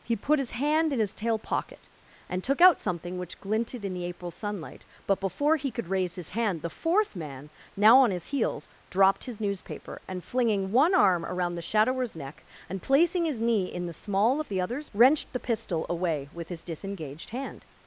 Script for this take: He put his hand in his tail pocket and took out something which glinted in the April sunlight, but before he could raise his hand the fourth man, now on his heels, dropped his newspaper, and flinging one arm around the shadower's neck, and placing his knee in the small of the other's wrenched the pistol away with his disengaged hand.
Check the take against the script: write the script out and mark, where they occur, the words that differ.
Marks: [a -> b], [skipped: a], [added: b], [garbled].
He put his hand in his tail pocket and took out something which glinted in the April sunlight, but before he could raise his hand the fourth man, now on his heels, dropped his newspaper, and flinging one arm around the shadower's neck, and placing his knee in the small of the other's wrenched the pistol away with his disengaged hand.